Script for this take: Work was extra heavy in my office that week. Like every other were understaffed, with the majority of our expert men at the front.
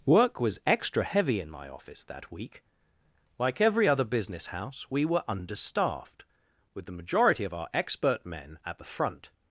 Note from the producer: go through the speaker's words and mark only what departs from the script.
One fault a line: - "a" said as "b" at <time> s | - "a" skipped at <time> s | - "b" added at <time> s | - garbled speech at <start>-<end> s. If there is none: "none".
- "business house we" added at 4.0 s